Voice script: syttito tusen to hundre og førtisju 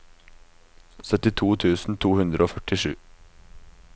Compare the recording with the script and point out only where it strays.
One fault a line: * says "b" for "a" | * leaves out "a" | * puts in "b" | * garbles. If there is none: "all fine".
all fine